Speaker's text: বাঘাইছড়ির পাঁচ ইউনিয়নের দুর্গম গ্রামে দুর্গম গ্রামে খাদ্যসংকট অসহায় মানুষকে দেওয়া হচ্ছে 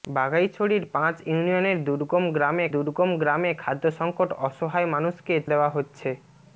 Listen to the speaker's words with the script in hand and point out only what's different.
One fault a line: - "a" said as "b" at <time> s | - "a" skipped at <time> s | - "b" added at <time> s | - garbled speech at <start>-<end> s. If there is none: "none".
none